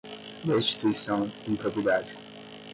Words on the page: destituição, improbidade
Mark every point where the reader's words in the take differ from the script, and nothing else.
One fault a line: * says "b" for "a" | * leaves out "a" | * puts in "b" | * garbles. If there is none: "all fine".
all fine